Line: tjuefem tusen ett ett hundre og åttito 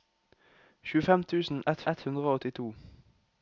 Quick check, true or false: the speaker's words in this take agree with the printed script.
true